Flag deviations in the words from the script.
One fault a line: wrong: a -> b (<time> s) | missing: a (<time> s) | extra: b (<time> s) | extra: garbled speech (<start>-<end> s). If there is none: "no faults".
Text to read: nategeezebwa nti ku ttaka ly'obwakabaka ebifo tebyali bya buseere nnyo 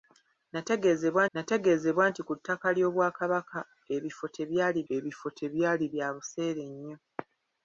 extra: nategeezebwa (1.3 s)
extra: ebifo tebyali (4.9 s)